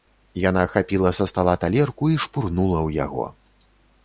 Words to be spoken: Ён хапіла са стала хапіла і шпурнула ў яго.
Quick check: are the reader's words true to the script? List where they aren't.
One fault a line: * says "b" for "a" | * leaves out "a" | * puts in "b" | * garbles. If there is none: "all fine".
* says "Яна" for "Ён"
* says "талерку" for "хапіла"